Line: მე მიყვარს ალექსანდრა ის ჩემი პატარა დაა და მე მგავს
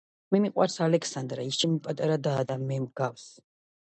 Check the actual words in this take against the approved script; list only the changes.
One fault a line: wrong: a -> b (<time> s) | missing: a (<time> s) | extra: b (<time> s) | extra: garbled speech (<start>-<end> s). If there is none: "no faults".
no faults